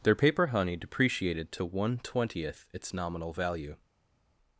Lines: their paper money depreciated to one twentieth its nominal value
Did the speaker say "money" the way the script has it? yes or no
no